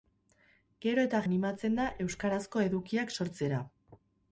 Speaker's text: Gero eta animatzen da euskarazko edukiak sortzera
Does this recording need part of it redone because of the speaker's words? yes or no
no